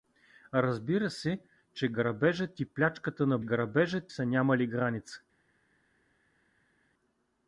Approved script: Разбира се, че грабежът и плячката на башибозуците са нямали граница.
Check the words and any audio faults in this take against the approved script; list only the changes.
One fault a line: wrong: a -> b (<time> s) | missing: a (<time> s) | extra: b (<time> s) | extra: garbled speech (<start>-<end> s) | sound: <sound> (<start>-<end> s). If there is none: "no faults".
wrong: башибозуците -> грабежът (3.4 s)